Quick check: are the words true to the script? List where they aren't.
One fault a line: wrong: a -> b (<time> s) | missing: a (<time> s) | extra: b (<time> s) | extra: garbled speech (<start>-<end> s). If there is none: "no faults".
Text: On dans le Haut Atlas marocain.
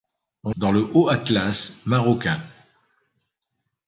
no faults